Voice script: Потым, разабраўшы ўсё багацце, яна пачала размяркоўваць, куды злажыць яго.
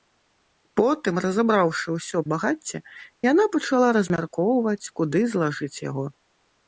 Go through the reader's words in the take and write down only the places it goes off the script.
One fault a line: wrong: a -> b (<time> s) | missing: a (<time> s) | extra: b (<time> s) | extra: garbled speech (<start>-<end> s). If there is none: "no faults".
no faults